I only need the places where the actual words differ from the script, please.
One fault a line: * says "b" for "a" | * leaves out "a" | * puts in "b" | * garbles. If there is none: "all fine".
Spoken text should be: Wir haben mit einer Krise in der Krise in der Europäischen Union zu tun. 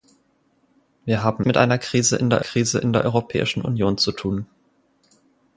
all fine